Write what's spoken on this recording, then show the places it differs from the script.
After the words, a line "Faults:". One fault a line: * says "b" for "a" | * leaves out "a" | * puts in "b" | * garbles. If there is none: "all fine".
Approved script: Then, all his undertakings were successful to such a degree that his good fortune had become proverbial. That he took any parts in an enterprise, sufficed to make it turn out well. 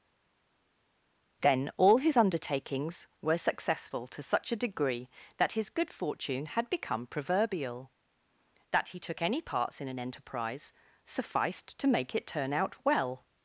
Then, all his undertakings were successful to such a degree that his good fortune had become proverbial. That he took any parts in an enterprise, sufficed to make it turn out well.
Faults:
all fine